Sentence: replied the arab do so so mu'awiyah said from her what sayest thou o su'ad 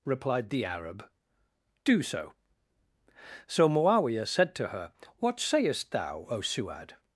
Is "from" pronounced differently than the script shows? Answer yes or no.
yes